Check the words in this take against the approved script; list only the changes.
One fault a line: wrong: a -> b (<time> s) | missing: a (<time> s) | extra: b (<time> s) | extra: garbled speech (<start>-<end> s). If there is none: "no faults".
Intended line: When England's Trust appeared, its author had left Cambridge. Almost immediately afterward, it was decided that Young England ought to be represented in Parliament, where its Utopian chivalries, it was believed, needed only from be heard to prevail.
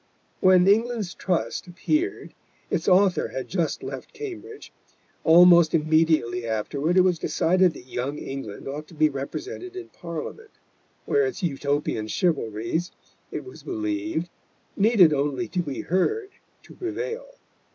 extra: just (3.5 s)
wrong: from -> to (15.5 s)